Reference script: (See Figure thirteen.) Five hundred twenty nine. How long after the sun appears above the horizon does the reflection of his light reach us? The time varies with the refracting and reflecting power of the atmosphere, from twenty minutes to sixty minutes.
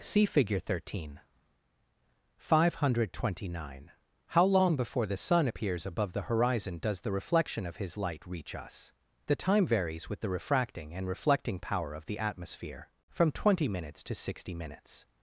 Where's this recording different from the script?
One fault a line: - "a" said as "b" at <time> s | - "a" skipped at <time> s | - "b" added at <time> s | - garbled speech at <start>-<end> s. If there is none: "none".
- "after" said as "before" at 4.8 s